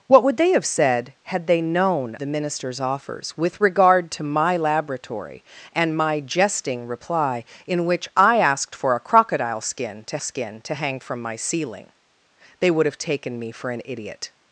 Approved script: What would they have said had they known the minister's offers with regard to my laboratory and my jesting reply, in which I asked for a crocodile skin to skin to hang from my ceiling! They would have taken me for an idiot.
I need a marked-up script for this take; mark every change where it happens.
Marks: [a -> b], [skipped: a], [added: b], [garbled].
What would they have said had they known the minister's offers with regard to my laboratory and my jesting reply, in which I asked for a crocodile skin to skin to hang from my ceiling! They would have taken me for an idiot.